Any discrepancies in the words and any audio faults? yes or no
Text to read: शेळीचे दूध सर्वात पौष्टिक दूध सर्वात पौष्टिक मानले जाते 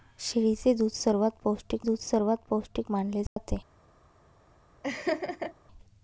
yes